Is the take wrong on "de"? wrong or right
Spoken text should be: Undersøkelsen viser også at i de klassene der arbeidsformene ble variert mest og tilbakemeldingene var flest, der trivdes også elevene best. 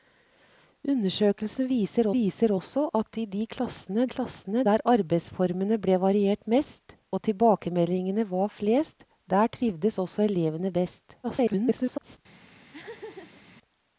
right